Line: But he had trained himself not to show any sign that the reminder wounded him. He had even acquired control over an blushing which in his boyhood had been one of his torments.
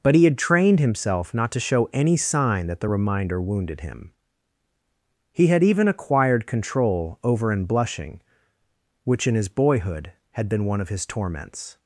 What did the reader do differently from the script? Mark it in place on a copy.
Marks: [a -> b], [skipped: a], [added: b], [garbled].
But he had trained himself not to show any sign that the reminder wounded him. He had even acquired control over an blushing which in his boyhood had been one of his torments.